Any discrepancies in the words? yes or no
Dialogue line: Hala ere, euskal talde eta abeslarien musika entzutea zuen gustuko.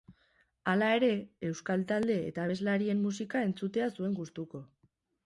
no